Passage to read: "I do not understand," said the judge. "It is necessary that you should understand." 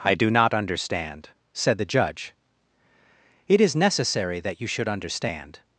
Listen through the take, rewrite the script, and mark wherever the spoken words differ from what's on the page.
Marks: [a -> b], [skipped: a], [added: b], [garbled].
"I do not understand," said the judge. "It is necessary that you should understand."